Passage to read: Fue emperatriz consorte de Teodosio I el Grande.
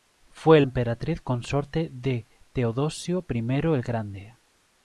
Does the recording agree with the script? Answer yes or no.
yes